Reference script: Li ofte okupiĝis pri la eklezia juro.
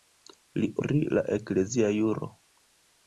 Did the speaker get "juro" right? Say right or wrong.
right